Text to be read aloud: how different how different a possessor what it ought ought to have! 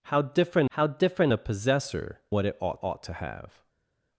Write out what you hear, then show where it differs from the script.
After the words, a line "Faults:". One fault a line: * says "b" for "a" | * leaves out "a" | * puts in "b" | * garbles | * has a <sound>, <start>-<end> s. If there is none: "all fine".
how different how different a possessor what it ought ought to have!
Faults:
all fine